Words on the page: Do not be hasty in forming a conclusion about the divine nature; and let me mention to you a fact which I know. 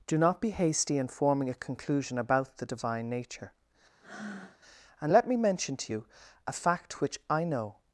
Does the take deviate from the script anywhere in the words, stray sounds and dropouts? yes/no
yes